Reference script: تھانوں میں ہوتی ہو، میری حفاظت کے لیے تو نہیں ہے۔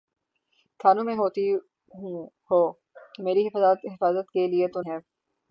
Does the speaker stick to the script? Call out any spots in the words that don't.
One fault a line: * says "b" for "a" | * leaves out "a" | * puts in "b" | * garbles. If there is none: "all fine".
* leaves out "نہیں"